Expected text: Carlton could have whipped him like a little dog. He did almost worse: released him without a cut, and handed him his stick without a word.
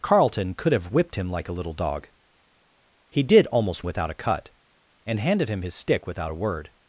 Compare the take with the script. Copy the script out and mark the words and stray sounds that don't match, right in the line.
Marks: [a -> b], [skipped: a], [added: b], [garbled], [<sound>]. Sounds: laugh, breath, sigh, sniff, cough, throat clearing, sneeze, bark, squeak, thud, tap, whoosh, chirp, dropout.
Carlton could have whipped him like a little dog. He did almost [skipped: worse: released him] without a cut, and handed him his stick without a word.